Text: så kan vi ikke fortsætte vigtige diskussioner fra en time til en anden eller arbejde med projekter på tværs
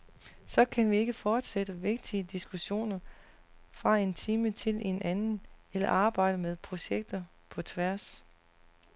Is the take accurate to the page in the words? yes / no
yes